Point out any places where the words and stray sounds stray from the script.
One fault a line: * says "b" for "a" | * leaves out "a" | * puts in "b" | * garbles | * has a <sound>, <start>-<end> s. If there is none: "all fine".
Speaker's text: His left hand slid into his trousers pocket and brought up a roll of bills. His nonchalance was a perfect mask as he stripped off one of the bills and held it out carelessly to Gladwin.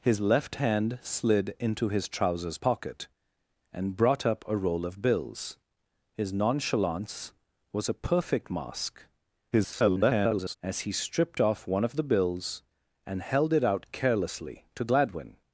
* garbles